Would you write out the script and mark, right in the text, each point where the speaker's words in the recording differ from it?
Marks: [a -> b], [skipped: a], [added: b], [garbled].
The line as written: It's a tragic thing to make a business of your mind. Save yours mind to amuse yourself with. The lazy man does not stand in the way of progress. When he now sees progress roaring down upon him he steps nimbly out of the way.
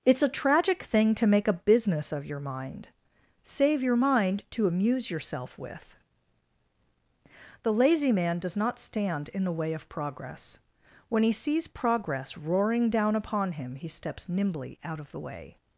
It's a tragic thing to make a business of your mind. Save [yours -> your] mind to amuse yourself with. The lazy man does not stand in the way of progress. When he [skipped: now] sees progress roaring down upon him he steps nimbly out of the way.